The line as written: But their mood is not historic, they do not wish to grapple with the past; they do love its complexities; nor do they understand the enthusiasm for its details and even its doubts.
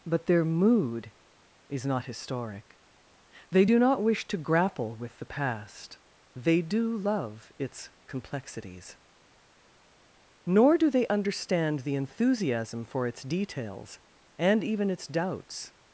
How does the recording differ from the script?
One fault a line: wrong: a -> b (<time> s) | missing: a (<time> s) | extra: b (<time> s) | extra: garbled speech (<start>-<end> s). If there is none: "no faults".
no faults